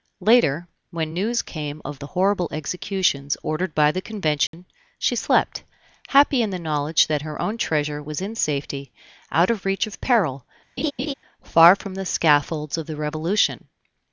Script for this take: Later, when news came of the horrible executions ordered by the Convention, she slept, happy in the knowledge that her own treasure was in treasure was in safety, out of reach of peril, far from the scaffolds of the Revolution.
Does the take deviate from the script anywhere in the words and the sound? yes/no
yes